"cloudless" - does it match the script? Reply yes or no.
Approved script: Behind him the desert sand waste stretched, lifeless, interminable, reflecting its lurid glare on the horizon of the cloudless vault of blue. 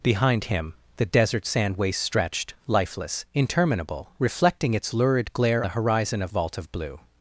no